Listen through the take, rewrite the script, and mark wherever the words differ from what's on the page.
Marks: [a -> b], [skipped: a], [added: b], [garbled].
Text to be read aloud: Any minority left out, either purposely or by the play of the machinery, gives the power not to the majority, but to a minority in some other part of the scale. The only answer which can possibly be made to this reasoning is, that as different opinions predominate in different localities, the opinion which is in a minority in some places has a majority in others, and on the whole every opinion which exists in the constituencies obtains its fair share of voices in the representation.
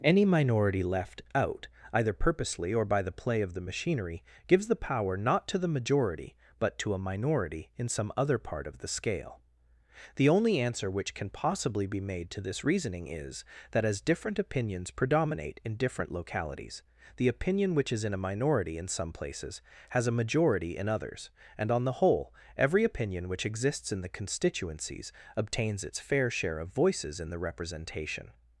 Any minority left out, either purposely or by the play of the machinery, gives the power not to the majority, but to a minority in some other part of the scale. The only answer which can possibly be made to this reasoning is, that as different opinions predominate in different localities, the opinion which is in a minority in some places has a majority in others, and on the whole every opinion which exists in the constituencies obtains its fair share of voices in the representation.